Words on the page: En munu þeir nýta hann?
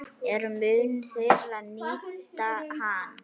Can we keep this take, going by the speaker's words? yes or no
yes